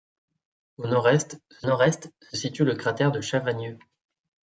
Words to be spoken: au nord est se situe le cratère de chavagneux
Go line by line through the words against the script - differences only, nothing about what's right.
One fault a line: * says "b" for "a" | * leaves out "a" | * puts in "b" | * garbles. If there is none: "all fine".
* puts in "nord est se"